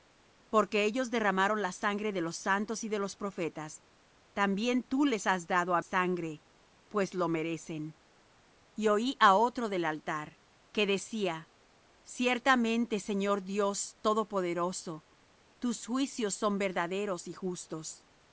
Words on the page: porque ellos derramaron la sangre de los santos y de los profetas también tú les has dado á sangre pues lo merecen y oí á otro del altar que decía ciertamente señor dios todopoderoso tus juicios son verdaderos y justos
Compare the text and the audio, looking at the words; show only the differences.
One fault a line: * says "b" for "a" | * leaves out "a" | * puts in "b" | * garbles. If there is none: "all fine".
all fine